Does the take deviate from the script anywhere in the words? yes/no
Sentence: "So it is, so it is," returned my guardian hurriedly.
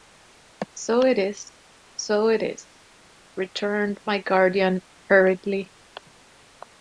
no